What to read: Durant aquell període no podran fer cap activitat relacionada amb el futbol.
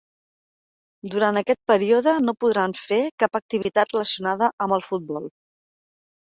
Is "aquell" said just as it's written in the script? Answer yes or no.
no